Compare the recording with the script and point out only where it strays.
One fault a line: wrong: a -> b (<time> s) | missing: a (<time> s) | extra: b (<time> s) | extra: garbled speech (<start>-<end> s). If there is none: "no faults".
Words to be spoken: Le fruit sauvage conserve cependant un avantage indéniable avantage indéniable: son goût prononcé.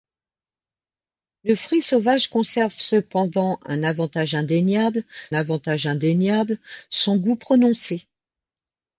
no faults